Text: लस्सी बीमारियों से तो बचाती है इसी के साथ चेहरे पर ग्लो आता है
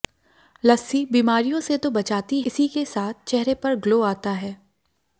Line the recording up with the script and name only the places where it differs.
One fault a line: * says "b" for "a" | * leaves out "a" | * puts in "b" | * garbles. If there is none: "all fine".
* leaves out "है"